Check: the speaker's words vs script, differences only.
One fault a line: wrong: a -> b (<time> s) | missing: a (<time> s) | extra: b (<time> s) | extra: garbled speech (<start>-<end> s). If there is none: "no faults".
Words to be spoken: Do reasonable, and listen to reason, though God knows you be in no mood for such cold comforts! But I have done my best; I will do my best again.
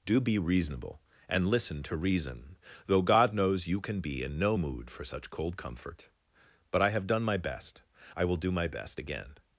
extra: be (0.2 s)
extra: can (3.8 s)
wrong: comforts -> comfort (5.6 s)